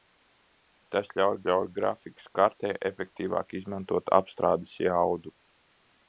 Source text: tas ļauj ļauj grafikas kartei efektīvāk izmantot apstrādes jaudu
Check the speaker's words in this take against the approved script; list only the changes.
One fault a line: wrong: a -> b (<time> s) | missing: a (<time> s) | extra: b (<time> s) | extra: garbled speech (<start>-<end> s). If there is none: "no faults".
no faults